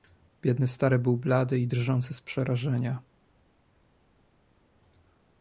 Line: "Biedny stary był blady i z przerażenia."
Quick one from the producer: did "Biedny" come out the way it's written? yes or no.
yes